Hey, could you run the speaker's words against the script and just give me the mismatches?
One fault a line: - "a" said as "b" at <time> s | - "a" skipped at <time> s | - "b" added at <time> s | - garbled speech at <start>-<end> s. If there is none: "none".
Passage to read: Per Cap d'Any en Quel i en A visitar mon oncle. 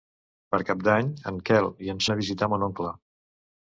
none